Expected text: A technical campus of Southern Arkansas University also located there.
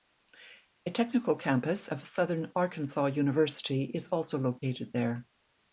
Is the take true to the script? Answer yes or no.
no